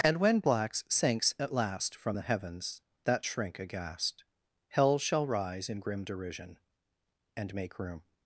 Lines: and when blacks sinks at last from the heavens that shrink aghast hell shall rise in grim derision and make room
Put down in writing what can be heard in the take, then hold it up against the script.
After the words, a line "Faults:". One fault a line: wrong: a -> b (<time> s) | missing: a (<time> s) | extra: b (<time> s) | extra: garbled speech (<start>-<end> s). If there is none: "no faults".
and when blacks sinks at last from the heavens that shrink aghast hell shall rise in grim derision and make room
Faults:
no faults